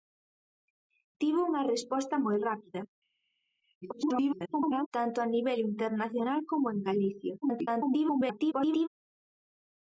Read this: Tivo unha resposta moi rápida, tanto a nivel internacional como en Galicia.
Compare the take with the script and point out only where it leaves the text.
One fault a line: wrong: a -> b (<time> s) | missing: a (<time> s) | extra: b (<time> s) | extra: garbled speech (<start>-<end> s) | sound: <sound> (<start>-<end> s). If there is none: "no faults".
extra: garbled speech (3.8-4.9 s)
extra: garbled speech (7.4-8.9 s)